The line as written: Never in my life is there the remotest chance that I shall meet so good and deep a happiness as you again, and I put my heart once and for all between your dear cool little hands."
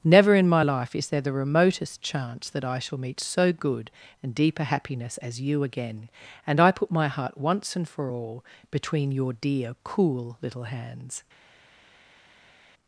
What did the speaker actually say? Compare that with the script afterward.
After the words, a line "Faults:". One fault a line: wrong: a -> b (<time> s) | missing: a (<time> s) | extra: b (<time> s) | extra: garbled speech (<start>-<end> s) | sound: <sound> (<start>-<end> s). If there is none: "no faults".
Never in my life is there the remotest chance that I shall meet so good and deep a happiness as you again, and I put my heart once and for all between your dear cool little hands."
Faults:
no faults